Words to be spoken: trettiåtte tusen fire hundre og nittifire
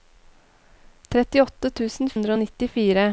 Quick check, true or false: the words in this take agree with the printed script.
false